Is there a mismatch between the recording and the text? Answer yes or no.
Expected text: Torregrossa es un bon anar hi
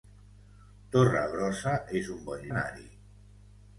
no